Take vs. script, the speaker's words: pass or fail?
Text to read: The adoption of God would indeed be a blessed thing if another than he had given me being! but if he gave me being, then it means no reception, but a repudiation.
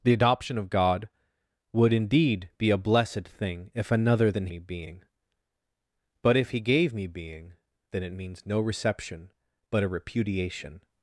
fail